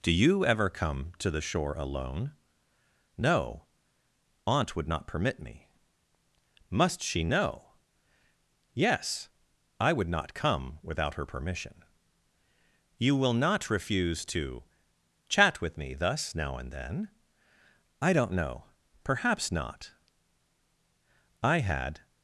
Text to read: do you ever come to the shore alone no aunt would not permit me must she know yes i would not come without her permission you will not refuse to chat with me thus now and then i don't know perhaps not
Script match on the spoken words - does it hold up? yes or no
no